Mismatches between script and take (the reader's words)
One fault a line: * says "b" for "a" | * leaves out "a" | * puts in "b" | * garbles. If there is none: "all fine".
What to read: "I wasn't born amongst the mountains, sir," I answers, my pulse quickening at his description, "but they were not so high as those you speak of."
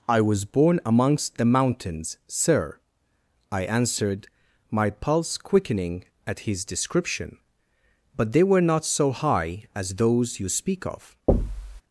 * says "was" for "wasn't"
* says "answered" for "answers"